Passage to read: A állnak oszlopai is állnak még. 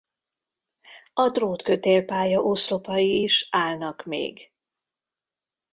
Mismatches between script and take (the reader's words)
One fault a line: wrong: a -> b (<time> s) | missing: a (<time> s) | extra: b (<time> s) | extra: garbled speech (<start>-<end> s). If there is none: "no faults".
wrong: állnak -> drótkötélpálya (1.3 s)